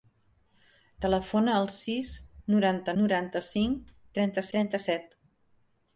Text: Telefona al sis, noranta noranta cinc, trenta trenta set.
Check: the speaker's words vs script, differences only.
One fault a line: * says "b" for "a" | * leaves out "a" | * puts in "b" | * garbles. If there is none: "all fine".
all fine